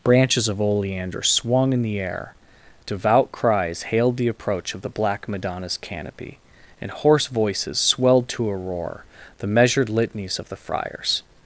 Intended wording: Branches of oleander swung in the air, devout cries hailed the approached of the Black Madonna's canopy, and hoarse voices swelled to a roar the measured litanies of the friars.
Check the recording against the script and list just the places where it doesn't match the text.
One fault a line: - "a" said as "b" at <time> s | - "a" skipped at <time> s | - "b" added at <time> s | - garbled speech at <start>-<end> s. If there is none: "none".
- "approached" said as "approach" at 4.3 s